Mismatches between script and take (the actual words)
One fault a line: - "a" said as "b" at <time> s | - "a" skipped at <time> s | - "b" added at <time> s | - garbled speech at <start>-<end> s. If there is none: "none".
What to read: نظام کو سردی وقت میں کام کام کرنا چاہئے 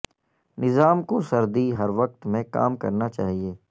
- "ہر" added at 1.8 s
- "کام" skipped at 2.8 s